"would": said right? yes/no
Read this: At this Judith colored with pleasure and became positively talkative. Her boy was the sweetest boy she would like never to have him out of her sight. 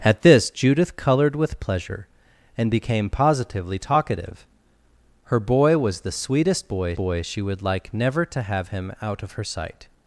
yes